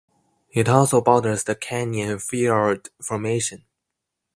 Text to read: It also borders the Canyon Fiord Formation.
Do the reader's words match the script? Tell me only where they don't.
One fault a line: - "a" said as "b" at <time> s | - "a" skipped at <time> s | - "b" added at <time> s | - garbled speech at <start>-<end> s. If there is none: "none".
none